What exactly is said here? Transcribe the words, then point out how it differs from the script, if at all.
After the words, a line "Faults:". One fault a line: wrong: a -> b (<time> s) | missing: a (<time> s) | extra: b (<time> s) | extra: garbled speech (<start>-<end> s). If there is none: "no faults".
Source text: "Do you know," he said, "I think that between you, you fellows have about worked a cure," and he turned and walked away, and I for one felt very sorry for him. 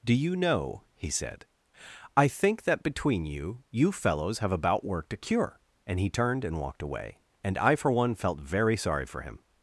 "Do you know," he said, "I think that between you, you fellows have about worked a cure," and he turned and walked away, and I for one felt very sorry for him.
Faults:
no faults